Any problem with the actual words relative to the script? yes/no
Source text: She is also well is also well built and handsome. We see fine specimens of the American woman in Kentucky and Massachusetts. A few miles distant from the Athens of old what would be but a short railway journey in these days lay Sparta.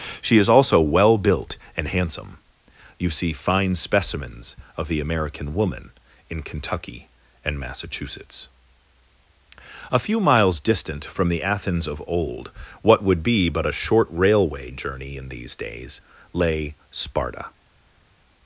yes